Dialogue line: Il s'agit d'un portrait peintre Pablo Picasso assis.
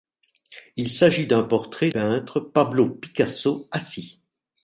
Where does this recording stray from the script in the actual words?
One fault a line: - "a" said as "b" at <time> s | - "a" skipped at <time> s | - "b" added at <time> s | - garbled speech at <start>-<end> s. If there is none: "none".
none